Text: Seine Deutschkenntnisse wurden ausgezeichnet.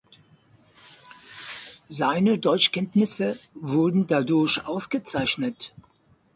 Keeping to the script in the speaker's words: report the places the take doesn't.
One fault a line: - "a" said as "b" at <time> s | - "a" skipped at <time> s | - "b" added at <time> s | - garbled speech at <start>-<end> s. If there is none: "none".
- "dadurch" added at 4.1 s